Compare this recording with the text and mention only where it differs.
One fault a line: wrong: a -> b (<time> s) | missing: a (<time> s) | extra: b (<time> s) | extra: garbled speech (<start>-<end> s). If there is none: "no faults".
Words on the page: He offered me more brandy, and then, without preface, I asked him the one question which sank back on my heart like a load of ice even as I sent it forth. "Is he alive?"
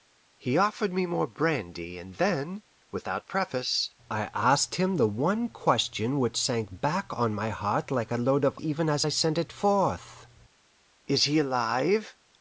missing: ice (8.6 s)